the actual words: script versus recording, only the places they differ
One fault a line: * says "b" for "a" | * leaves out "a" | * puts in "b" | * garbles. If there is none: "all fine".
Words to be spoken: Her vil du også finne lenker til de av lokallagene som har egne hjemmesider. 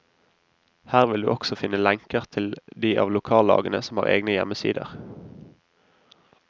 all fine